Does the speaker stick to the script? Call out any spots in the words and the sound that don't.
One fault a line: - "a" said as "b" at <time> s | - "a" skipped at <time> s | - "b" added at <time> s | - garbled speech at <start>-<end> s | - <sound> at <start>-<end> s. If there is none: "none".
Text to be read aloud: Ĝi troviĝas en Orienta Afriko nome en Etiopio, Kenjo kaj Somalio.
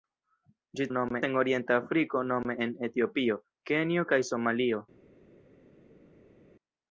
- "troviĝas" said as "nome" at 0.9 s